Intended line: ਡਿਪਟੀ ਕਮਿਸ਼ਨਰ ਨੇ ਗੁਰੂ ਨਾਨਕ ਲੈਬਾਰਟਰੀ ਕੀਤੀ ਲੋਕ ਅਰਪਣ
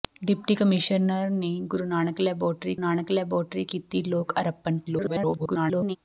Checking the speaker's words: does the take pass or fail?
fail